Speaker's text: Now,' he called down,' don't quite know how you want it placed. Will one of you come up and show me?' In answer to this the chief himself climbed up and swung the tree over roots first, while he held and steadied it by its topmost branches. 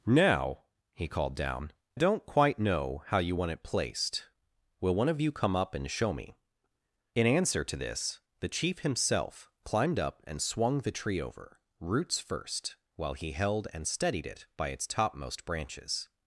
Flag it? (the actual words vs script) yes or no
no